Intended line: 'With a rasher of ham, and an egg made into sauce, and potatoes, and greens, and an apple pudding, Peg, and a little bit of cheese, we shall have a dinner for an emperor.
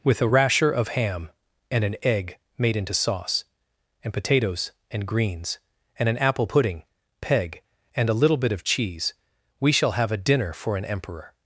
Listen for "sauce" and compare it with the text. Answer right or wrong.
right